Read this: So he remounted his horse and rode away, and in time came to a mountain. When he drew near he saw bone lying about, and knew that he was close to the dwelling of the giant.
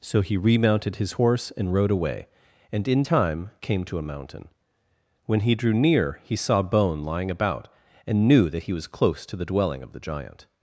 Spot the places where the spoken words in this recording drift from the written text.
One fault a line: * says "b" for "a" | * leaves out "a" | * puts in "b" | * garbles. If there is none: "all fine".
all fine